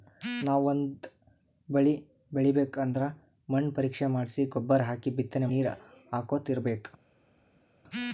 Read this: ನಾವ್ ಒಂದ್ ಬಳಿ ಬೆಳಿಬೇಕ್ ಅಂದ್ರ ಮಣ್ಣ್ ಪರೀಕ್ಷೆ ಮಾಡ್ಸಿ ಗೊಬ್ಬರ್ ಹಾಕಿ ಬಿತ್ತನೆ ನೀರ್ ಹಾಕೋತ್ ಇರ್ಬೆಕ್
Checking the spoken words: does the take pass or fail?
pass